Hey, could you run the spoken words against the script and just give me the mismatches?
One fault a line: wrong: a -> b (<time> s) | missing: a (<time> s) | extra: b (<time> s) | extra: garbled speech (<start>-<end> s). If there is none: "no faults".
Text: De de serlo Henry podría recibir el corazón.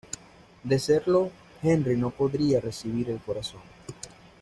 missing: de (0.8 s)
extra: no (1.9 s)